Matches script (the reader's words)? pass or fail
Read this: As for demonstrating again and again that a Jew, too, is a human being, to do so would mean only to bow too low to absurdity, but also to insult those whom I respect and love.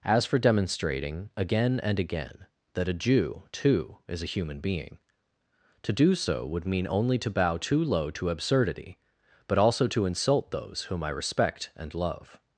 pass